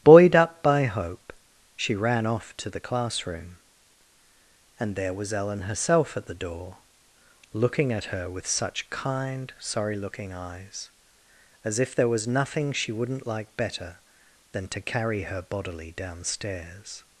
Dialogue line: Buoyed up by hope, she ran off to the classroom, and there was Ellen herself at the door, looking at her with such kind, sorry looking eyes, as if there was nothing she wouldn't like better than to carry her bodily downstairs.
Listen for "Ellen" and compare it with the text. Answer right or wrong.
right